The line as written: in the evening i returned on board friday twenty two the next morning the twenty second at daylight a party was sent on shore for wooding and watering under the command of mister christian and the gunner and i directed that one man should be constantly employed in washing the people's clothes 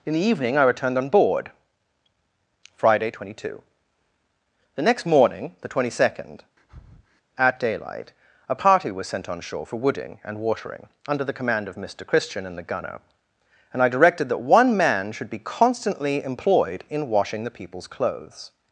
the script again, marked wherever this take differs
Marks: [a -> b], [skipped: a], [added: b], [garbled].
in the evening i returned on board friday twenty two the next morning the twenty second at daylight a party was sent on shore for wooding and watering under the command of mister christian and the gunner and i directed that one man should be constantly employed in washing the people's clothes